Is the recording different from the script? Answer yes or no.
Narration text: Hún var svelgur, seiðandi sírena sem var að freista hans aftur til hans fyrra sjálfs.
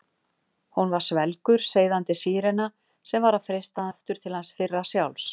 yes